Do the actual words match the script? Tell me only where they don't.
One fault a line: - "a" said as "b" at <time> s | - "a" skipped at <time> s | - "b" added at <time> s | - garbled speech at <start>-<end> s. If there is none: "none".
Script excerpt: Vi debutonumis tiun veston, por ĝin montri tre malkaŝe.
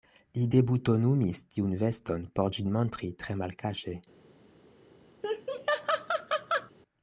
- "Vi" said as "Li" at 0.3 s